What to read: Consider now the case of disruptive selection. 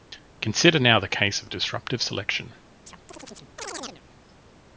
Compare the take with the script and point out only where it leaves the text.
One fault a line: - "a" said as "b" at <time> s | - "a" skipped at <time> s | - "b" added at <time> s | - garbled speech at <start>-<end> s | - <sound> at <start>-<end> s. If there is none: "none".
- chirp at 2.9-4.0 s